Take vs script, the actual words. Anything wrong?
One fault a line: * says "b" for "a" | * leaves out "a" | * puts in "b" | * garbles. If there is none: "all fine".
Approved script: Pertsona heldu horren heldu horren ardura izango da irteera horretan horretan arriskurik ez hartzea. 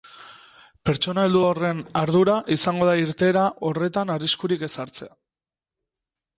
* leaves out "heldu horren"
* leaves out "horretan"